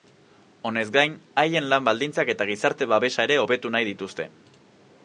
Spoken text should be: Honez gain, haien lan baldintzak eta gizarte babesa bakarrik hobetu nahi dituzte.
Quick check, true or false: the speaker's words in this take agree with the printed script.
false